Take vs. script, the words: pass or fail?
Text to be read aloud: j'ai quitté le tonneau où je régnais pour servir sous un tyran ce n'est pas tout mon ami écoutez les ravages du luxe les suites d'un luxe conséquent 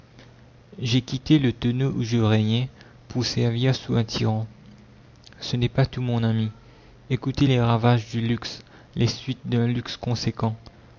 pass